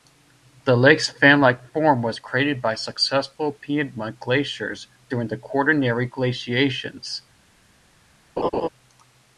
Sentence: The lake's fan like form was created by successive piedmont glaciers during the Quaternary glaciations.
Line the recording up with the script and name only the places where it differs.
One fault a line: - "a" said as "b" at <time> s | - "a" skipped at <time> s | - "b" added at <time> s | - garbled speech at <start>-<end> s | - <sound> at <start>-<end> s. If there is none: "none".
- laugh at 8.4-8.7 s